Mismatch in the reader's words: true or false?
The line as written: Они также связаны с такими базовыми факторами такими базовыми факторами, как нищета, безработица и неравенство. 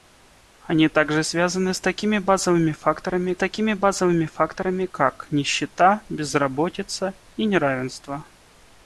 false